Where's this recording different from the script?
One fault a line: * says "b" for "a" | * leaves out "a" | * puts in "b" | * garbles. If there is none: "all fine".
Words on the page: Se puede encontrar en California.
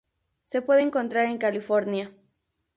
all fine